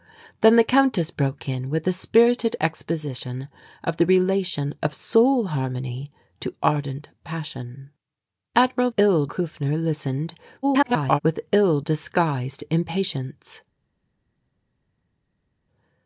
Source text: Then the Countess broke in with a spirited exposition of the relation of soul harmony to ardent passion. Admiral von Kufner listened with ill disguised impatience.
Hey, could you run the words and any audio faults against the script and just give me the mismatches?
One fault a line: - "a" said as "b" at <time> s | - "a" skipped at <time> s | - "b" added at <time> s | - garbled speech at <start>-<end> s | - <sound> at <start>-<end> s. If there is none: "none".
- "von" said as "ill" at 9.0 s
- garbled speech at 10.6-11.2 s